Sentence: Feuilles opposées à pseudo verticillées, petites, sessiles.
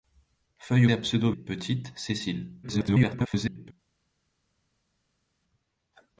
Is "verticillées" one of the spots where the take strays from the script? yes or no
yes